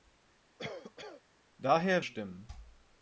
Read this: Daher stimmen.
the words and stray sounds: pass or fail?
fail